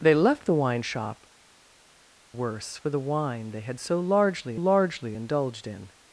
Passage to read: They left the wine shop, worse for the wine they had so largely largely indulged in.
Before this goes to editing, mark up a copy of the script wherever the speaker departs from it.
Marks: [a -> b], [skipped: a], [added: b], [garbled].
They left the wine shop, worse for the wine they had so largely largely indulged in.